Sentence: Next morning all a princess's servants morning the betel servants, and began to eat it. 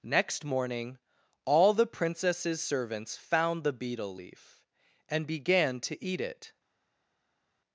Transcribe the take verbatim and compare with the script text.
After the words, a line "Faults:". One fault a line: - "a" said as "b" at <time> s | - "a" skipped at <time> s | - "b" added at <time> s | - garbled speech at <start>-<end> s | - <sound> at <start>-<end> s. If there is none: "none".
Next morning all the princess's servants found the betel leaf, and began to eat it.
Faults:
- "a" said as "the" at 1.7 s
- "morning" said as "found" at 3.2 s
- "servants" said as "leaf" at 4.1 s